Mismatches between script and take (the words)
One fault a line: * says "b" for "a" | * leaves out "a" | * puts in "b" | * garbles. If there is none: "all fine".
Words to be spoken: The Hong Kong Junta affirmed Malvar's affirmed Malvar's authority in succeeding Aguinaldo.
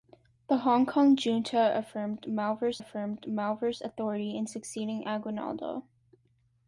all fine